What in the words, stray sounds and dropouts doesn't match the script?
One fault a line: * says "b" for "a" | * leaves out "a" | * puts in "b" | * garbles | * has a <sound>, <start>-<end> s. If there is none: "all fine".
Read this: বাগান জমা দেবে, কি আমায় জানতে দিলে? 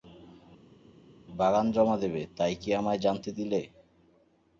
* puts in "তাই"